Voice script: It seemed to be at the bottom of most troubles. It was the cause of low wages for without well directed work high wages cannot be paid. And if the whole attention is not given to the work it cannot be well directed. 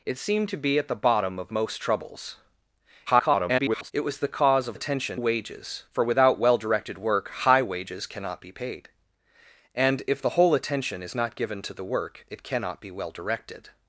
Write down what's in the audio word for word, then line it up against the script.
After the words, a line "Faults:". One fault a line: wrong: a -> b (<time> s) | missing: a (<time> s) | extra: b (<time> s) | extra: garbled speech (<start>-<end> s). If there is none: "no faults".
It seemed to be at the bottom of most troubles. [garbled] It was the cause of attention wages for without well directed work high wages cannot be paid. And if the whole attention is not given to the work it cannot be well directed.
Faults:
extra: garbled speech (3.1-3.9 s)
wrong: low -> attention (4.7 s)